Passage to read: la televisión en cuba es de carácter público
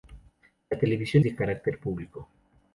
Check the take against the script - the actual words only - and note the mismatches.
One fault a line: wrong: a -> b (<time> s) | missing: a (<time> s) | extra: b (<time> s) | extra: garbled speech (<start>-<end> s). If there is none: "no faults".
missing: en cuba es (1.2 s)